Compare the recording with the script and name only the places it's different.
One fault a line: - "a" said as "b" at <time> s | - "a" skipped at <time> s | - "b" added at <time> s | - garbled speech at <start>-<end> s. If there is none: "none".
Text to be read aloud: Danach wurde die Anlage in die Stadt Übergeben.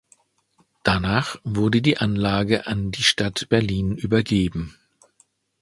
- "in" said as "an" at 2.7 s
- "Berlin" added at 3.5 s